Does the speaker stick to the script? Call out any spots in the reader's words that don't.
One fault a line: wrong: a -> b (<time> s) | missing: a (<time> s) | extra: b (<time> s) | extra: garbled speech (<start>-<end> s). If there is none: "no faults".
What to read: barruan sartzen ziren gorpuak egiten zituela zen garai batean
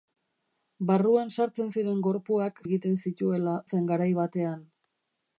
no faults